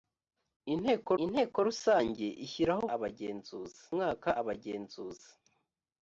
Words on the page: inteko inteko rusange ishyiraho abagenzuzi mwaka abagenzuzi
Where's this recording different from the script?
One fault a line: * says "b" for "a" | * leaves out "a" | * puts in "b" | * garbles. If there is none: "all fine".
all fine